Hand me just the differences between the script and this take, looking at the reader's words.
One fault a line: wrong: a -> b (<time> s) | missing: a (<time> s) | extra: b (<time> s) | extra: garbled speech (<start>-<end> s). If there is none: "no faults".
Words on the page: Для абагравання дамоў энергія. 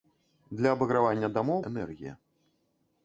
no faults